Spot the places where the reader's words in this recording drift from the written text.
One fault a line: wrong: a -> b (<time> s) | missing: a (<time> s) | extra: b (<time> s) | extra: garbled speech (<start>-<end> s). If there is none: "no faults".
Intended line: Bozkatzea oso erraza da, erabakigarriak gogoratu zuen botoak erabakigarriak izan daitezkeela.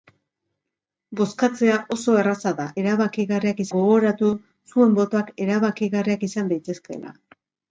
no faults